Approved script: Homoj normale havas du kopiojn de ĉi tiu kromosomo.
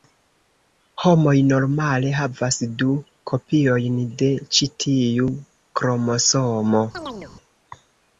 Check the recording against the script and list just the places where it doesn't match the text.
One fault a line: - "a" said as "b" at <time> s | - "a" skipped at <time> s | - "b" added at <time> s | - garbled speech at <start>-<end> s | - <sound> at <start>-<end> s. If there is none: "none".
- chirp at 6.9-7.3 s